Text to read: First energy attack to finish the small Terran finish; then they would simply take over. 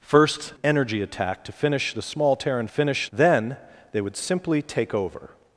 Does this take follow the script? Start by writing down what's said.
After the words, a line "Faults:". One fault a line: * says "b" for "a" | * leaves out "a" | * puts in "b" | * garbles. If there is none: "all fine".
First energy attack to finish the small Terran finish; then they would simply take over.
Faults:
all fine